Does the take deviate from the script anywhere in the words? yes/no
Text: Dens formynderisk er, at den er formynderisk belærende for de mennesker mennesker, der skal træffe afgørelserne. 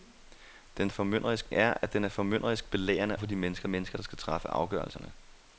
no